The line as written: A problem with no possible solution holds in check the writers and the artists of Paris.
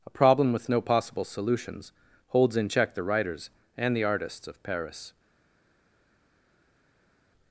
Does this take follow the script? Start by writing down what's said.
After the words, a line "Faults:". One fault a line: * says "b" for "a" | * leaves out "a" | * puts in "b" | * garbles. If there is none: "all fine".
A problem with no possible solutions holds in check the writers and the artists of Paris.
Faults:
* says "solutions" for "solution"